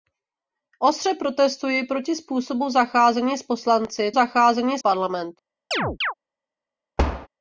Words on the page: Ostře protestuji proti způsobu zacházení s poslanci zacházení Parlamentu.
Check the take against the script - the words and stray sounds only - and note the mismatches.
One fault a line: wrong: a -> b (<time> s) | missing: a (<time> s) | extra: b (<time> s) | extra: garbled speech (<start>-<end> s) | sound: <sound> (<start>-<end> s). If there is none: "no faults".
sound: chirp (5.7-6.1 s)
sound: thud (7.0-7.3 s)